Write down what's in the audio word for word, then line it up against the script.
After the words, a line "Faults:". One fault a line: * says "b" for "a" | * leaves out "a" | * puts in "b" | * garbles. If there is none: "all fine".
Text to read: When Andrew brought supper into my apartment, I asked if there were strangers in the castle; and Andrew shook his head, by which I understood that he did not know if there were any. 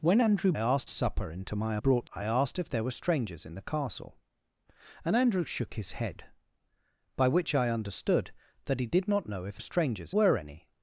When Andrew asked supper into my brought, I asked if there were strangers in the castle; and Andrew shook his head, by which I understood that he did not know if strangers were any.
Faults:
* says "asked" for "brought"
* says "brought" for "apartment"
* says "strangers" for "there"